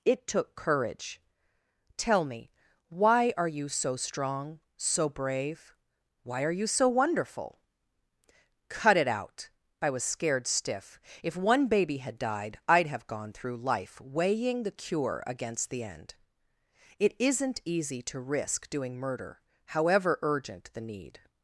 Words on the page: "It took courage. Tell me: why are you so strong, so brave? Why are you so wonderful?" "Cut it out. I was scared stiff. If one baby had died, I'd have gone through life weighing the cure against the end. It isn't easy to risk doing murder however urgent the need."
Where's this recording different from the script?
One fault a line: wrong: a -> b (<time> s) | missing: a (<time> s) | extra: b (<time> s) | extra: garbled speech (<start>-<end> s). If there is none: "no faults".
no faults